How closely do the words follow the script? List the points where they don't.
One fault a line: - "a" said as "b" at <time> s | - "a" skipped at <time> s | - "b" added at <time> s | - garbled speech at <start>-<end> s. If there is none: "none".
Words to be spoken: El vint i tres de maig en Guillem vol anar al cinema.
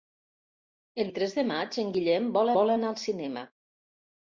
- "vint" skipped at 1.1 s
- "vol" added at 2.6 s